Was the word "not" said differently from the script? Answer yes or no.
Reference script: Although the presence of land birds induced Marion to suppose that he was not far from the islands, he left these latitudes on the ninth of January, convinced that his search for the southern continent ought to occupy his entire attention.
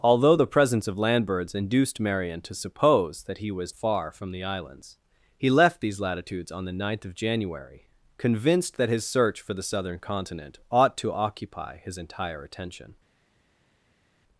yes